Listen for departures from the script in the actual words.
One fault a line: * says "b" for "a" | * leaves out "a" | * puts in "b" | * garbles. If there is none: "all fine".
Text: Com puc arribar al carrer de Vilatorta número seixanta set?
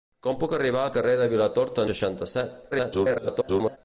* leaves out "número"
* garbles